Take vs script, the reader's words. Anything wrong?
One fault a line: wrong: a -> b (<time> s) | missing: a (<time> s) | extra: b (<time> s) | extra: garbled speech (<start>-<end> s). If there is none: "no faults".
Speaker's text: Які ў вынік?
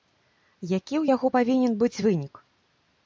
extra: яго павінен быць (1.1 s)